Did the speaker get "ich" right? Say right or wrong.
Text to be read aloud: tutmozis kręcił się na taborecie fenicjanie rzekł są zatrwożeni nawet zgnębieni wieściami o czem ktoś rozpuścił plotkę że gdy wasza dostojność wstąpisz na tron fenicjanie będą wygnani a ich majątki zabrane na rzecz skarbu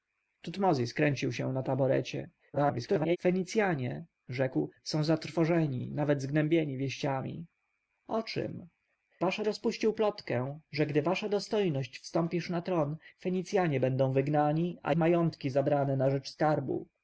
wrong